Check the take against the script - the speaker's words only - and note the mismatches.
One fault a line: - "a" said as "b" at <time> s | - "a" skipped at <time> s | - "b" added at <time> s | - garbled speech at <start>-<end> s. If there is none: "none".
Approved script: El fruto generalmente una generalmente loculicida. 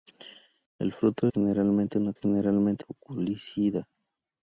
none